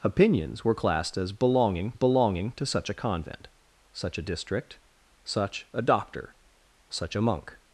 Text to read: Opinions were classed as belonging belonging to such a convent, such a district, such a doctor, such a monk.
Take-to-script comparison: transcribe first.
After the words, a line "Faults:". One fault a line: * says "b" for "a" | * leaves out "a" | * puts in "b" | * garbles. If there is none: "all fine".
Opinions were classed as belonging belonging to such a convent, such a district, such a doctor, such a monk.
Faults:
all fine